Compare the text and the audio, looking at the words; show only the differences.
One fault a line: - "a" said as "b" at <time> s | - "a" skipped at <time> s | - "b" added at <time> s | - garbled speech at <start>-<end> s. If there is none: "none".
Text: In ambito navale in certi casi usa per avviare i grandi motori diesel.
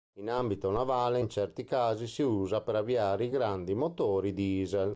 - "si" added at 2.1 s